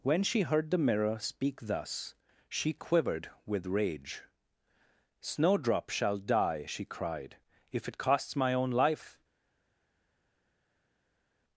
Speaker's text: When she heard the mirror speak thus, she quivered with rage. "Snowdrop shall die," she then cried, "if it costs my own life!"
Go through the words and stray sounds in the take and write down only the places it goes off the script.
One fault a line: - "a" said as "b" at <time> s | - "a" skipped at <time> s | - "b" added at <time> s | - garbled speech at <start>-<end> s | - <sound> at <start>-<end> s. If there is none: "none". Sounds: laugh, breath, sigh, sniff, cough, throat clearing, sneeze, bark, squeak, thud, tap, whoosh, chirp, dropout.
- "then" skipped at 6.8 s